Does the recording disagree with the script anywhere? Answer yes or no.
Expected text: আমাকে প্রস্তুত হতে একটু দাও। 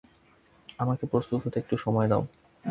yes